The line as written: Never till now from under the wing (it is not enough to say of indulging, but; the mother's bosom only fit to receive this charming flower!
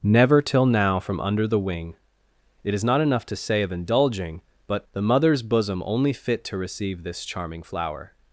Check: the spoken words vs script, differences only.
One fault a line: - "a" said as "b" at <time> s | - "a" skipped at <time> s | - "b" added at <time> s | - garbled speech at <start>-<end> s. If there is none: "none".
none